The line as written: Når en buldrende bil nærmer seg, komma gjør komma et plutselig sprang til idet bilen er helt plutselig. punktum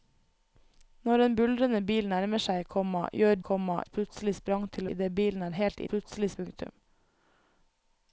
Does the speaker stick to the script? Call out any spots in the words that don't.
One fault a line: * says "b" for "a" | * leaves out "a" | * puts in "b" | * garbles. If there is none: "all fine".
all fine